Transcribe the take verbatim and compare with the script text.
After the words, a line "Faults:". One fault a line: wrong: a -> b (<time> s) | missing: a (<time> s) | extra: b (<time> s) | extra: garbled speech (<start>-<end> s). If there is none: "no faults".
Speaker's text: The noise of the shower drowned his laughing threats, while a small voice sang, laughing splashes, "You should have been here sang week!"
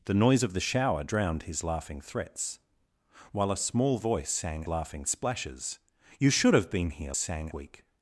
The noise of the shower drowned his laughing threats, while a small voice sang, laughing splashes, "You should have been here sang week!"
Faults:
no faults